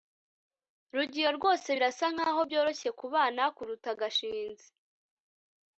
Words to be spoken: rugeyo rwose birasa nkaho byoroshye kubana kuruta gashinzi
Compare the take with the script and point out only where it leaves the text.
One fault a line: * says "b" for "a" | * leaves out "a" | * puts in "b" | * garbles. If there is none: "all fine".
all fine